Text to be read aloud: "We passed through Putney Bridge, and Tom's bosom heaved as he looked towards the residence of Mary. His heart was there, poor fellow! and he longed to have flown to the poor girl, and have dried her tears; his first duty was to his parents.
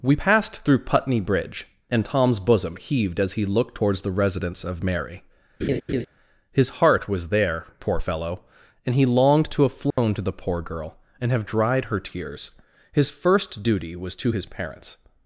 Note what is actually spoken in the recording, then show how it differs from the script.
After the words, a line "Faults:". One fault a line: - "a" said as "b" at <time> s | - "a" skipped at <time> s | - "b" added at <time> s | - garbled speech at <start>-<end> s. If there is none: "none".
"We passed through Putney Bridge, and Tom's bosom heaved as he looked towards the residence of Mary. His heart was there, poor fellow! and he longed to have flown to the poor girl, and have dried her tears; his first duty was to his parents.
Faults:
none